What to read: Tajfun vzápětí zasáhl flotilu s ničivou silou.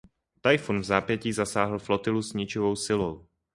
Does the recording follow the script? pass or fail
pass